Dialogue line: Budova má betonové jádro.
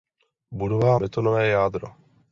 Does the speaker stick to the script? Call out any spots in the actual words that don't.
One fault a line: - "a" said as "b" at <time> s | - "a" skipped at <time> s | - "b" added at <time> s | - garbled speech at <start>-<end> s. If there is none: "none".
- "má" skipped at 1.0 s